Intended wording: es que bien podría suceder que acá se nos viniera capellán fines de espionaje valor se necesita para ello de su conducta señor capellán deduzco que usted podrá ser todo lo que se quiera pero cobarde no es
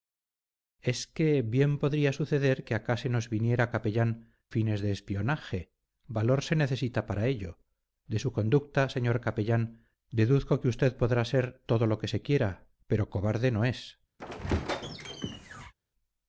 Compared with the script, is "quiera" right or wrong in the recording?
right